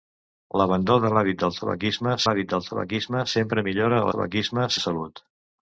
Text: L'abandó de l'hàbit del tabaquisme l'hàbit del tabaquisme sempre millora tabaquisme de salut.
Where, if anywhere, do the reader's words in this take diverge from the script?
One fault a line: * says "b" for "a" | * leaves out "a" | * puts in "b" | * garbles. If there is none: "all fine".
all fine